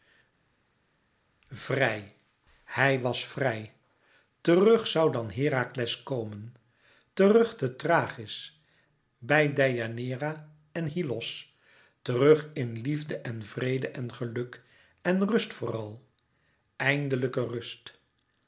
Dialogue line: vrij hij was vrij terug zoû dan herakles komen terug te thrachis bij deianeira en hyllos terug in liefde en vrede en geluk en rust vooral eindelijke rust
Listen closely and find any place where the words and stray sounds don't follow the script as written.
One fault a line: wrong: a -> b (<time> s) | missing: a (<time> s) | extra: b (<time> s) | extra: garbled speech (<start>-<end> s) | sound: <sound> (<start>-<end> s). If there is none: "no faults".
no faults